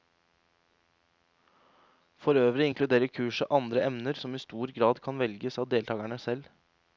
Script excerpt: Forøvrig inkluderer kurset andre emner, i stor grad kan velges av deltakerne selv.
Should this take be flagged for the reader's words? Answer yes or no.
yes